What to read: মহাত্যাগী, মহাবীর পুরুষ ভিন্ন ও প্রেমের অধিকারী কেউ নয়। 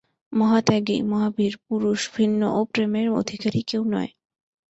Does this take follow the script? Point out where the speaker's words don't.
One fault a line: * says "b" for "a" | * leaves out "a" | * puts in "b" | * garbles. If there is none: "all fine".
all fine